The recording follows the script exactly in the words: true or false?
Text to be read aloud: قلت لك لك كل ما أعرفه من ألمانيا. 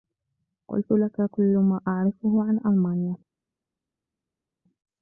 false